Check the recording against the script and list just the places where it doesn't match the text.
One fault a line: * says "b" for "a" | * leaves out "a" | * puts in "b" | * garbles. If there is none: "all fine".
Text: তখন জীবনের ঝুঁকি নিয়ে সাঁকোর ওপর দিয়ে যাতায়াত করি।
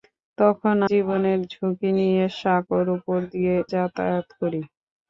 all fine